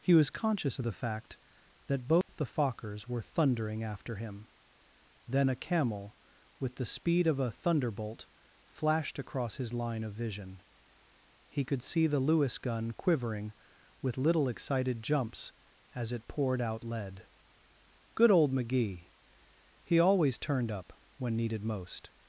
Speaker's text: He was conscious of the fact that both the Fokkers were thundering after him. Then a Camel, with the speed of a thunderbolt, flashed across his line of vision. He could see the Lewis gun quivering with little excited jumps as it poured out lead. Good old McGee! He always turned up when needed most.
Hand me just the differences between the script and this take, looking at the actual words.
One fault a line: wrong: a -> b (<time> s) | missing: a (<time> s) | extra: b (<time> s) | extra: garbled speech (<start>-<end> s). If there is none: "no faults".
no faults